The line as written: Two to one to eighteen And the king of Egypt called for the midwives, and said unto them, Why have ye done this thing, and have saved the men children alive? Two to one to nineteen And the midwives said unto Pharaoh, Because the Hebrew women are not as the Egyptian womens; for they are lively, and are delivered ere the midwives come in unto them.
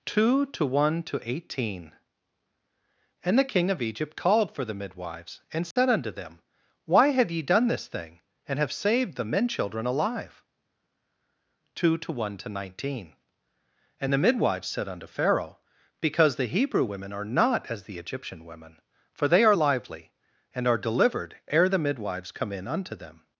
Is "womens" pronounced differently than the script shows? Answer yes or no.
yes